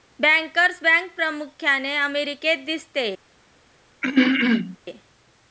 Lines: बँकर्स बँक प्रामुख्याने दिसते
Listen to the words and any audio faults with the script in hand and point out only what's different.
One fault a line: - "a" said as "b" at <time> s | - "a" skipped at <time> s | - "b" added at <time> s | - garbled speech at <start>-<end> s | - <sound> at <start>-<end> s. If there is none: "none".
- "अमेरिकेत" added at 2.0 s
- throat clearing at 4.0-4.8 s